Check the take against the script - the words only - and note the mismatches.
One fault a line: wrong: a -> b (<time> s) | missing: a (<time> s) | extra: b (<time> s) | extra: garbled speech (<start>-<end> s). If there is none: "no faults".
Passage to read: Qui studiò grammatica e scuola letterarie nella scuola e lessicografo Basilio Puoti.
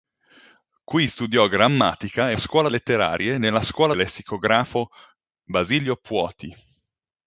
no faults